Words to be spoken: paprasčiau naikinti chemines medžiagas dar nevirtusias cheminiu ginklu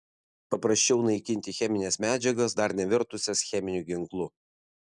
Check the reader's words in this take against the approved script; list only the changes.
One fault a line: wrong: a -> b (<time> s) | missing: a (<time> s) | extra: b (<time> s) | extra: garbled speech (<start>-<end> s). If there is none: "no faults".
no faults